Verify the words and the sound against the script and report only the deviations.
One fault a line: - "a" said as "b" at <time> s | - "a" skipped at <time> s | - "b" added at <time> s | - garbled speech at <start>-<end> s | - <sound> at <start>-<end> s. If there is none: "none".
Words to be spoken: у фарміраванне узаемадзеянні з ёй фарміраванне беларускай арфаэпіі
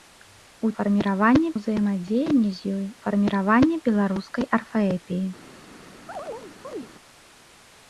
- chirp at 6.1-6.9 s